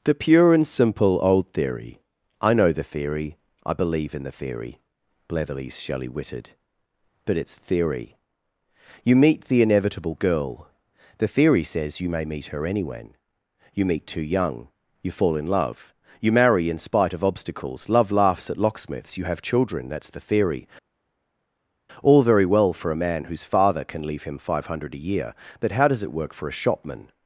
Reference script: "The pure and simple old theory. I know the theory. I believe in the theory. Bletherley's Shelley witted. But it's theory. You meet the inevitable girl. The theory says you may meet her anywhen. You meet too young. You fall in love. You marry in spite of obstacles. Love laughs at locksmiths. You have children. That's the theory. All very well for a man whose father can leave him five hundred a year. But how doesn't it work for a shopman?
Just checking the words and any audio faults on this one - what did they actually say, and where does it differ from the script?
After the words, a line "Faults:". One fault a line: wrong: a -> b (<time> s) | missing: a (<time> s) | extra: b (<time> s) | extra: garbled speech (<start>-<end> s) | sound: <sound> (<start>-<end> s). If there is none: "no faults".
"The pure and simple old theory. I know the theory. I believe in the theory. Bletherley's Shelley witted. But it's theory. You meet the inevitable girl. The theory says you may meet her anywhen. You meet too young. You fall in love. You marry in spite of obstacles. Love laughs at locksmiths. You have children. That's the theory. All very well for a man whose father can leave him five hundred a year. But how does it work for a shopman?
Faults:
wrong: doesn't -> does (25.9 s)